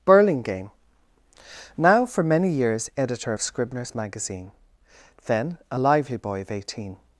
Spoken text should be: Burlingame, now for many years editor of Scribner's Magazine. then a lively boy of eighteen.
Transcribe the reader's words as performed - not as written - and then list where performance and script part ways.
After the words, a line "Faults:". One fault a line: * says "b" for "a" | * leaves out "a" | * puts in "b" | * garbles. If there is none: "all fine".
Burlingame, now for many years editor of Scribner's Magazine. then a lively boy of eighteen.
Faults:
all fine